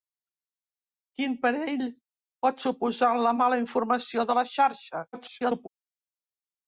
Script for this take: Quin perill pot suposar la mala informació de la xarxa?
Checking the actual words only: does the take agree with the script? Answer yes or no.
no